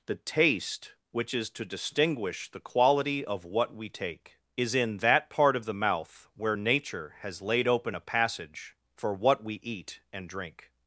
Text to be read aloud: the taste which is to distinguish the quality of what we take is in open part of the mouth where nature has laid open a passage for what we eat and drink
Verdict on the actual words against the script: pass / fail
fail